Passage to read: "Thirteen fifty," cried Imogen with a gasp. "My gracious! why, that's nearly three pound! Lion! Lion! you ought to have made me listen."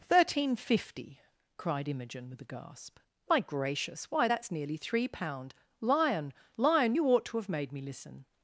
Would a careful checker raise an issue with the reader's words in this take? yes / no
no